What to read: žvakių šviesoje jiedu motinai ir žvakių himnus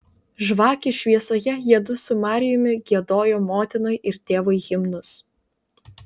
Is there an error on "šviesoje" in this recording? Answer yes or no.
no